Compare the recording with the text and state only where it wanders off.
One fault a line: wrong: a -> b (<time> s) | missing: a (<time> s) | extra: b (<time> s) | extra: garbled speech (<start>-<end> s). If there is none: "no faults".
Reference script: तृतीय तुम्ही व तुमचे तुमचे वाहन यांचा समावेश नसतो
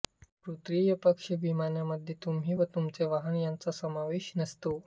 extra: पक्ष विम्यामध्ये (1.0 s)
missing: तुमचे (3.0 s)